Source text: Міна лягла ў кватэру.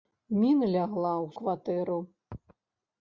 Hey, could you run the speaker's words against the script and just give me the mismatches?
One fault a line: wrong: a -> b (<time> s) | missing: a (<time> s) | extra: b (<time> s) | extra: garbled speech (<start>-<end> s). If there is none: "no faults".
no faults